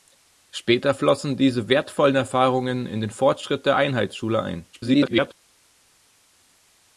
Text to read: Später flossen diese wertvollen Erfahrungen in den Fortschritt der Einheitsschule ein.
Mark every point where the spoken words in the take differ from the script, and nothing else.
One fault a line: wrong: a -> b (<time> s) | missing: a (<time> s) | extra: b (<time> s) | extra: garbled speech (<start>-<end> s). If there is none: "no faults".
extra: garbled speech (4.7-5.3 s)